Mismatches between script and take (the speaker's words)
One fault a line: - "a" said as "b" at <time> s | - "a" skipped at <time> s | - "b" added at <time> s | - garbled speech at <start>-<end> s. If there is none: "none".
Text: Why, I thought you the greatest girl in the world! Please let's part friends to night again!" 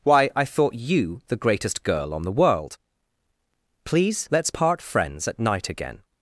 - "in" said as "on" at 2.1 s
- "to" said as "at" at 5.3 s